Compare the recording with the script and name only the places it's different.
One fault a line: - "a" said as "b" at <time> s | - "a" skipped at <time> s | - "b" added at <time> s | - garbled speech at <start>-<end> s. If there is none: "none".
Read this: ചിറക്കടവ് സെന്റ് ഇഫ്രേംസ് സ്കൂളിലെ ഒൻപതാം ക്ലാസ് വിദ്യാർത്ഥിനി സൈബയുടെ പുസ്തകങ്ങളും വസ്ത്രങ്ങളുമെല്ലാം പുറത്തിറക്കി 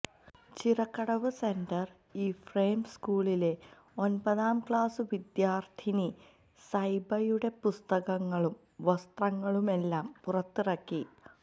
none